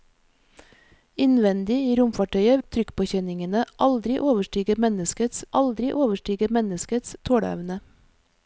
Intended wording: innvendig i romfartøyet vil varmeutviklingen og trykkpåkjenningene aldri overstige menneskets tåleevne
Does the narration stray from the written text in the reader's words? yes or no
yes